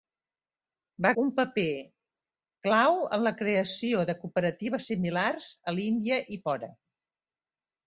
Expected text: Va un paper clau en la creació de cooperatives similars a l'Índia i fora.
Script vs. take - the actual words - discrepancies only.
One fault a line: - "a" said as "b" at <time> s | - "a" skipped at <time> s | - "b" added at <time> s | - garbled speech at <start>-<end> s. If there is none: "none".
none